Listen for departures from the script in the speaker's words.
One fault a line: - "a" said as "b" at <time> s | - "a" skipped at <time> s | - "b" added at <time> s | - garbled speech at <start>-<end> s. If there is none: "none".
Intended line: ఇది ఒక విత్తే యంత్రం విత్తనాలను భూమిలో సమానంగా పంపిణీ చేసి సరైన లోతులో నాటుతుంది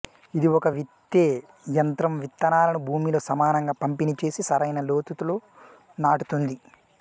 none